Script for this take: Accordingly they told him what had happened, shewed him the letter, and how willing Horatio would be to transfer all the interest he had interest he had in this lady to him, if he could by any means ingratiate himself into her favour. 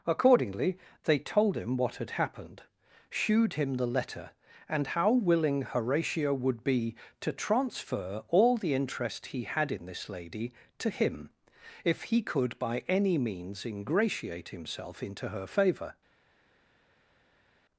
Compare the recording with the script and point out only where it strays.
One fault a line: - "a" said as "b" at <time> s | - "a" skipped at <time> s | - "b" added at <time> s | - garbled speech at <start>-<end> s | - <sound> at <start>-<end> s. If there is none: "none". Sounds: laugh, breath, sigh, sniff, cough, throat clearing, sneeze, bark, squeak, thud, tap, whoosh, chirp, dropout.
- "interest he had" skipped at 9.7 s